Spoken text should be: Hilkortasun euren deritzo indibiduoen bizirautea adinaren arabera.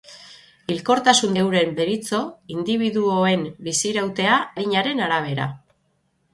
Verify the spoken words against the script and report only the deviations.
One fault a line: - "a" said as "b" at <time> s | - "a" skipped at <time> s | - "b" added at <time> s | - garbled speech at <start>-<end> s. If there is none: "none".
none